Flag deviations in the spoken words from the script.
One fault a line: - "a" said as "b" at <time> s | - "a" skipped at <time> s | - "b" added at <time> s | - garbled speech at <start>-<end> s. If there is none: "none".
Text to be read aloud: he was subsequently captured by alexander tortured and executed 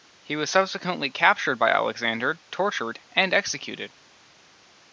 none